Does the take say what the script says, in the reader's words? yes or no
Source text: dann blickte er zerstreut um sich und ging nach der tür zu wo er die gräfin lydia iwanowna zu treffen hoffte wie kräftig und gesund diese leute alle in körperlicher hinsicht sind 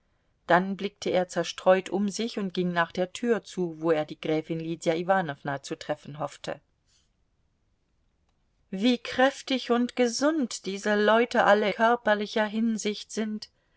no